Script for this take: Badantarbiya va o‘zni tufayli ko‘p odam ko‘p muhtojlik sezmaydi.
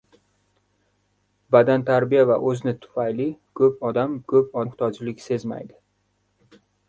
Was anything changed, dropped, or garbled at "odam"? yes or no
no